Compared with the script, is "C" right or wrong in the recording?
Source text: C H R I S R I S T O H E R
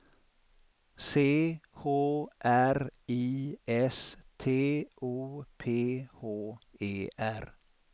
right